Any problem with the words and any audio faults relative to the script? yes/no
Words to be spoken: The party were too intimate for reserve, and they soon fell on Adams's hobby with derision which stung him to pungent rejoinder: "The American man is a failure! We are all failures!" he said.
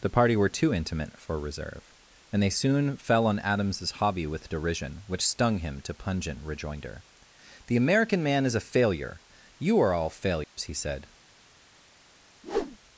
yes